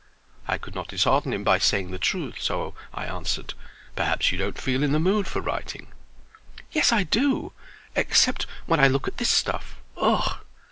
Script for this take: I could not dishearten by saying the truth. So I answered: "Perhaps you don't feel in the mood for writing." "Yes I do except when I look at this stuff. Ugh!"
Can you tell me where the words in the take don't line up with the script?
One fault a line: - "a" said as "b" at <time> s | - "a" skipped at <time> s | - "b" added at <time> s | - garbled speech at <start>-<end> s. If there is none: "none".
- "him" added at 1.3 s